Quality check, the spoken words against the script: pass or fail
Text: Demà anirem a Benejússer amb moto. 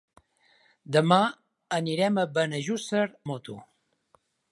fail